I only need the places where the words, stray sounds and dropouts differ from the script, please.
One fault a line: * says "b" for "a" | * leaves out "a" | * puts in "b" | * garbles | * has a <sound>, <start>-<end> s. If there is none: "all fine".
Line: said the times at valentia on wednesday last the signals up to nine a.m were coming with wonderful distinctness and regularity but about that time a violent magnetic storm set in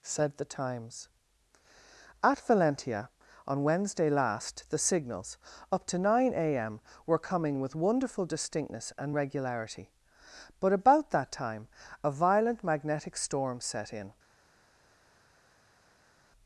all fine